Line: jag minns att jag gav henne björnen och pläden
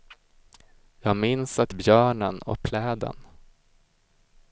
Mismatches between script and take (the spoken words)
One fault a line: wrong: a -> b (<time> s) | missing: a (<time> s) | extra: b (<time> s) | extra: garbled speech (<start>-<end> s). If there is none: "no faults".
missing: jag gav henne (1.7 s)